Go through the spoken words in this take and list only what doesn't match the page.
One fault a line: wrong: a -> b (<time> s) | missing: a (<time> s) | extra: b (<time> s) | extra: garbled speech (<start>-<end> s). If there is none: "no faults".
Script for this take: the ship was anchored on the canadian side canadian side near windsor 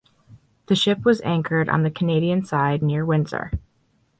missing: canadian side (2.9 s)